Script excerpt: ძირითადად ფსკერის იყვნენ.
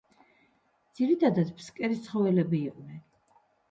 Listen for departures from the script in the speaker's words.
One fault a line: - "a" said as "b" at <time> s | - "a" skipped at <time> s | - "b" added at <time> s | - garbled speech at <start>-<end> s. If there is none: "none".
- "ცხოველები" added at 2.1 s